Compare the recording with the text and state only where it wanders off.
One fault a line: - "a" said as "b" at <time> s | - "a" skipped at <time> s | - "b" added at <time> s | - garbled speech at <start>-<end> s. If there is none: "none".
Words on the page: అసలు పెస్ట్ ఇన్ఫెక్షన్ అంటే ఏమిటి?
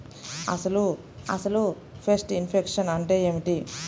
- "అసలు" added at 1.3 s